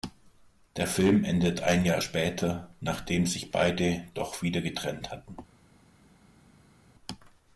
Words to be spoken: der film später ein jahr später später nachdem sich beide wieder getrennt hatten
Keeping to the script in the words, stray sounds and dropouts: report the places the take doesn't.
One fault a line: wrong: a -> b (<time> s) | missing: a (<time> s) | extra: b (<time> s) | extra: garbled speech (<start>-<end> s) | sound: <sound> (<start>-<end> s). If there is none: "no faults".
wrong: später -> endet (1.2 s)
missing: später (2.7 s)
extra: doch (4.1 s)